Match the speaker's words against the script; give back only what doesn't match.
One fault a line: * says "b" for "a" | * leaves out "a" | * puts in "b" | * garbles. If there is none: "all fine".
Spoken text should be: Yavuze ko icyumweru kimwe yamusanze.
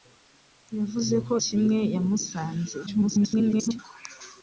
* leaves out "icyumweru"
* garbles